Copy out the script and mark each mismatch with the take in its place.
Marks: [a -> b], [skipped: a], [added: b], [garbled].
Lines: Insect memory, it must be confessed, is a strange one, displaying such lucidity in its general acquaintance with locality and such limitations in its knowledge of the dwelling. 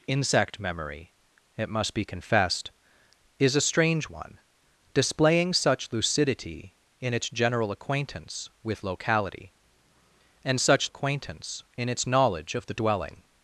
Insect memory, it must be confessed, is a strange one, displaying such lucidity in its general acquaintance with locality and such [limitations -> acquaintance] in its knowledge of the dwelling.